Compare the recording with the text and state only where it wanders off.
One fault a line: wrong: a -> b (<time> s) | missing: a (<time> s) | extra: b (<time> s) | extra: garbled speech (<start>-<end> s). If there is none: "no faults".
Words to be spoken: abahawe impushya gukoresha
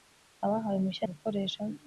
no faults